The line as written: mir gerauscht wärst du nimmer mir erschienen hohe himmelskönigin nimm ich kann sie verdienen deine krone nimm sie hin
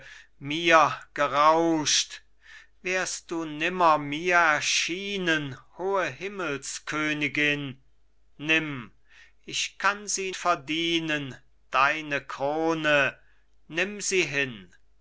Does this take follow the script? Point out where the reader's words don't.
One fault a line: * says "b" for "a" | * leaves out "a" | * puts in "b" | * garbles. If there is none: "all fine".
all fine